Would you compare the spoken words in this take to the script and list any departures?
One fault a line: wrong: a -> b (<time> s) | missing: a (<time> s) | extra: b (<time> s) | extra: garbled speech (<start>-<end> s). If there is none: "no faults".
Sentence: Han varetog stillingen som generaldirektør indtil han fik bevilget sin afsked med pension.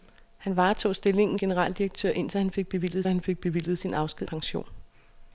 missing: som (1.4 s)
extra: han fik bevilget (3.1 s)
missing: med (4.3 s)